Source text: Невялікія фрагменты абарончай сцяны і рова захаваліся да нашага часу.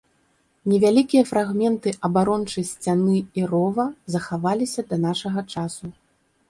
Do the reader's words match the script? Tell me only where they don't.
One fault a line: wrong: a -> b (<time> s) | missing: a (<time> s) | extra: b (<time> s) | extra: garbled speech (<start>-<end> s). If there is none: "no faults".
no faults